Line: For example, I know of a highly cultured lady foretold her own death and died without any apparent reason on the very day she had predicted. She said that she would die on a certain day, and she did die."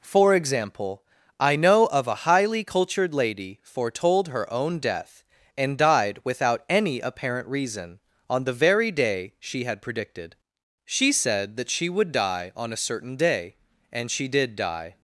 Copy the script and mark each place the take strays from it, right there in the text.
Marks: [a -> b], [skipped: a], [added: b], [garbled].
For example, I know of a highly cultured lady foretold her own death and died without any apparent reason on the very day she had predicted. She said that she would die on a certain day, and she did die."